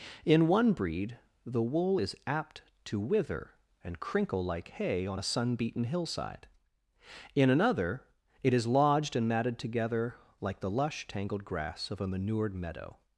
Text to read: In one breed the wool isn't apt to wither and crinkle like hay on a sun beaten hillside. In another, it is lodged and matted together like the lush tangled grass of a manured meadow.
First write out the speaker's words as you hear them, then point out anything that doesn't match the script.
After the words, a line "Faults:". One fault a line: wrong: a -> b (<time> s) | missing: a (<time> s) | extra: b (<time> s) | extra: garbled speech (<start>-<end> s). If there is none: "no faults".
In one breed the wool is apt to wither and crinkle like hay on a sun beaten hillside. In another, it is lodged and matted together like the lush tangled grass of a manured meadow.
Faults:
wrong: isn't -> is (2.0 s)